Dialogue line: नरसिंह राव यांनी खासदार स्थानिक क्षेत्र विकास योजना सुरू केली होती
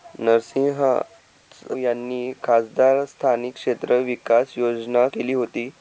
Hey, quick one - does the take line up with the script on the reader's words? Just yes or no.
no